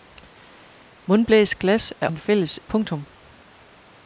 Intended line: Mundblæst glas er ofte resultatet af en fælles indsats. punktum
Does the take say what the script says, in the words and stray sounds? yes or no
no